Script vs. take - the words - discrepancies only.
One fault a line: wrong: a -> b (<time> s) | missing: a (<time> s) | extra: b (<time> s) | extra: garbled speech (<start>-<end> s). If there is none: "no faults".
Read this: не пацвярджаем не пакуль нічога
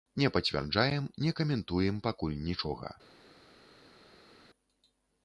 extra: каментуем (1.4 s)